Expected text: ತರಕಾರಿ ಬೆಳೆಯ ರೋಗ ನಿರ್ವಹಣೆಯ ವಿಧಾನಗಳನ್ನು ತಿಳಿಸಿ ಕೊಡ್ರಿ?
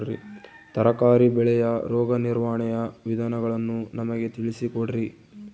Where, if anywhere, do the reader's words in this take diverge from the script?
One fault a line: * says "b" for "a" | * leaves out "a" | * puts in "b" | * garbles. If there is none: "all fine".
* puts in "ನಮಗೆ"